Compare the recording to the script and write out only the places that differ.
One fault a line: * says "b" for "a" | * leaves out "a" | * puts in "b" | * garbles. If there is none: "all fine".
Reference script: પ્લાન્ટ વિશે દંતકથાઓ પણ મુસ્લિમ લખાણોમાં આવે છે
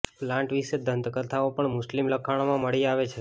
* puts in "મળી"